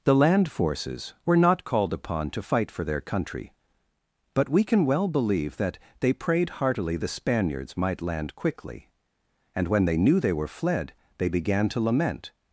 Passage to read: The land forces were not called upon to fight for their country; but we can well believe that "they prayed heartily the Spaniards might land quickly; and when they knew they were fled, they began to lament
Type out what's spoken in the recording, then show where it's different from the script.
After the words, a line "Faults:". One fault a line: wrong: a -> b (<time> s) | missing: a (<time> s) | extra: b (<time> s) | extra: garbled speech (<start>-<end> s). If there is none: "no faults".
The land forces were not called upon to fight for their country; but we can well believe that "they prayed heartily the Spaniards might land quickly; and when they knew they were fled, they began to lament
Faults:
no faults